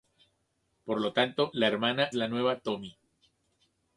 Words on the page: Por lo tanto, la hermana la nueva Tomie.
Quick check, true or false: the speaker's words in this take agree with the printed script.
true